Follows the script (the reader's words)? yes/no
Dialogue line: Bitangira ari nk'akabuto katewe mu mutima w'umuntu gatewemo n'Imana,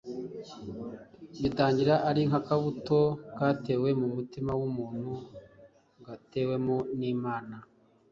yes